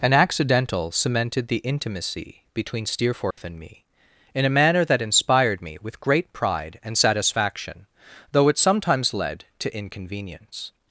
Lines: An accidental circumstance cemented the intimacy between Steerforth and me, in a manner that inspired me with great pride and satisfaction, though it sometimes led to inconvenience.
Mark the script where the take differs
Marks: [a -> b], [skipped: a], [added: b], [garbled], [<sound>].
An accidental [skipped: circumstance] cemented the intimacy between Steerforth [dropout] and me, in a manner that inspired me with great pride and satisfaction, though it sometimes led to inconvenience.